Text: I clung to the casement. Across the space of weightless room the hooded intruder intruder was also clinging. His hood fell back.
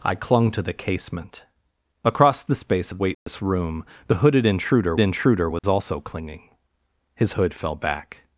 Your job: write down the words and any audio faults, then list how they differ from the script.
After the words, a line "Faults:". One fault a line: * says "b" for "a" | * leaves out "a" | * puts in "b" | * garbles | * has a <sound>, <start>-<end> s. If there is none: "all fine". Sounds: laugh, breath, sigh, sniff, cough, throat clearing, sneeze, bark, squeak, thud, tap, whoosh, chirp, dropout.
I clung to the casement. Across the space of weightless room the hooded intruder intruder was also clinging. His hood fell back.
Faults:
* has a dropout, 3.1-3.3 s
* has a dropout, 5.6-5.6 s